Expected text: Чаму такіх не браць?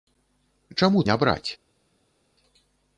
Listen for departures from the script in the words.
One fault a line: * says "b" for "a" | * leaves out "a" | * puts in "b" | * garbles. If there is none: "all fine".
* leaves out "такіх"